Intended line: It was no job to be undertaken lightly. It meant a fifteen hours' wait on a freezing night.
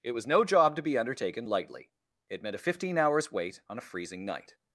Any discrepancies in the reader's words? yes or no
no